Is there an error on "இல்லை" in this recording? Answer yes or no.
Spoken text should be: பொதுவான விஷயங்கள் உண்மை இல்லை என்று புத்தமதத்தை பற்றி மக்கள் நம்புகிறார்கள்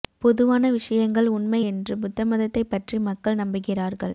yes